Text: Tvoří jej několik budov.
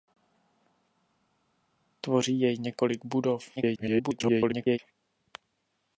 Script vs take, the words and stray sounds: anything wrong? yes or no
yes